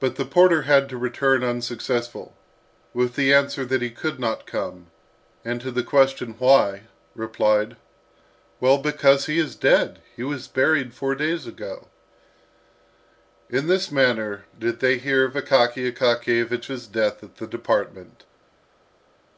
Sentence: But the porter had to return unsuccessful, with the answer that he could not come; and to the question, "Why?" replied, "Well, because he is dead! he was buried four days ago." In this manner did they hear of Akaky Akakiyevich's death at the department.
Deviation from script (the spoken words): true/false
false